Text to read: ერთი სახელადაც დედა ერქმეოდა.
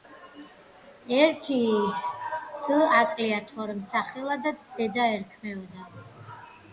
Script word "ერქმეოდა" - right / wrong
right